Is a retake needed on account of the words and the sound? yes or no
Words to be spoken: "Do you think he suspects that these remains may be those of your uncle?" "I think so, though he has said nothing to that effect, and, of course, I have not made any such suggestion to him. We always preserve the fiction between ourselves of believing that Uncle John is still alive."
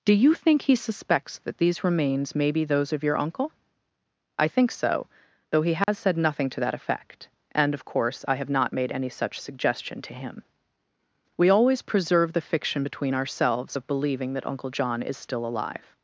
yes